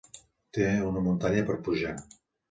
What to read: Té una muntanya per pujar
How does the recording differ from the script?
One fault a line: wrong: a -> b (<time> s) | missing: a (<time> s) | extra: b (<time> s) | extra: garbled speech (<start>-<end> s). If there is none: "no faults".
no faults